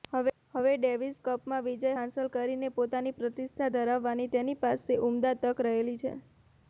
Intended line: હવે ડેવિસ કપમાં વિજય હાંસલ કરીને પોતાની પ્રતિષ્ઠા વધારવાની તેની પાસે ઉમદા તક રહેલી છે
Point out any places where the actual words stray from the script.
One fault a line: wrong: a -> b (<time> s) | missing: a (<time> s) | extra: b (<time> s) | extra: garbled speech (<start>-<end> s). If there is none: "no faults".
no faults